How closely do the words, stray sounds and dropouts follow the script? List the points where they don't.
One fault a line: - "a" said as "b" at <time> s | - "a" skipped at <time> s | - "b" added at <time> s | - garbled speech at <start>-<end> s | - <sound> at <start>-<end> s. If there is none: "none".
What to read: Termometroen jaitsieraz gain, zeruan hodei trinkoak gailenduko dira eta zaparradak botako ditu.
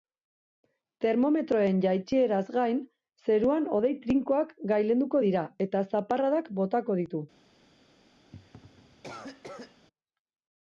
- cough at 8.3-9.9 s